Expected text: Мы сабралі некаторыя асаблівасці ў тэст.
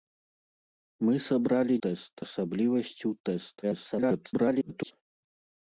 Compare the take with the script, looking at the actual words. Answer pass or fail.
fail